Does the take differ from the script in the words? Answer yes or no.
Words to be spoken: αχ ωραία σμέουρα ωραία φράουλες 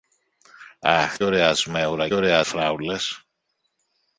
no